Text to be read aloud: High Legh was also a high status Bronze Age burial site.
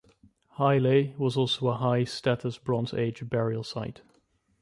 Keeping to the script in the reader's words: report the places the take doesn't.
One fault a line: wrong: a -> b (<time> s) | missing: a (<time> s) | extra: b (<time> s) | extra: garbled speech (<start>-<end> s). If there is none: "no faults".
no faults